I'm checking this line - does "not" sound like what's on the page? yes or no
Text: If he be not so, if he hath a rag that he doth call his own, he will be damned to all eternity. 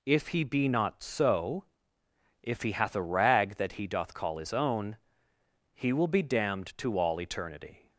yes